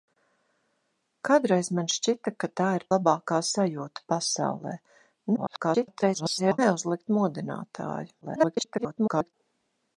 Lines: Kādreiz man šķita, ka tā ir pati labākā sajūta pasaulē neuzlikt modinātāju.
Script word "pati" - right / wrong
wrong